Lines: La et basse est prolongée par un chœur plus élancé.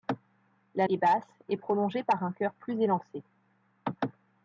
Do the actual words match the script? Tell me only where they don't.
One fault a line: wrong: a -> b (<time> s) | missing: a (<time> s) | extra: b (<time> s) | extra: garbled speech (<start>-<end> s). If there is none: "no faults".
no faults